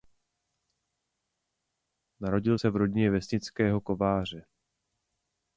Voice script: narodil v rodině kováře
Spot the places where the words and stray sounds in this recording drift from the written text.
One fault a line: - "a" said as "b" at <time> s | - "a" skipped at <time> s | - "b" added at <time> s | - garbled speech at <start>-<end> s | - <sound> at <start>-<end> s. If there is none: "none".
- "se" added at 2.5 s
- "vesnického" added at 3.1 s